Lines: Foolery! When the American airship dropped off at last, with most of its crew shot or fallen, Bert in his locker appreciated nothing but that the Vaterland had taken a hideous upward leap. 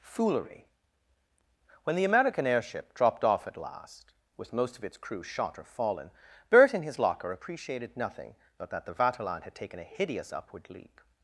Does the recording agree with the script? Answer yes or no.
yes